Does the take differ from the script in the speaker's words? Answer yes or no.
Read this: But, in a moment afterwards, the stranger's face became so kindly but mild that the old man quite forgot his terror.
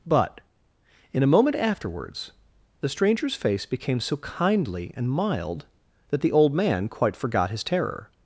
yes